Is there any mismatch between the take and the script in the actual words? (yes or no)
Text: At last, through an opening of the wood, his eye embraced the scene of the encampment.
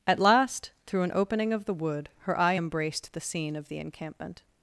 yes